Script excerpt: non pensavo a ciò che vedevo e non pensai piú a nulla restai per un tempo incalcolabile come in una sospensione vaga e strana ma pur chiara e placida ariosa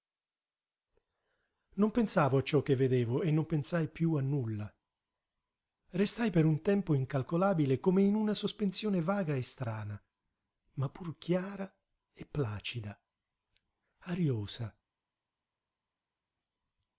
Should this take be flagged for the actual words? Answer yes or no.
no